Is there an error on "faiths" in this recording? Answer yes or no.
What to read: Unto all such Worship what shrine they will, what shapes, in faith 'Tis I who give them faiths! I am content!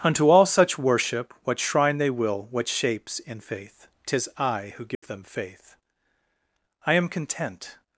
yes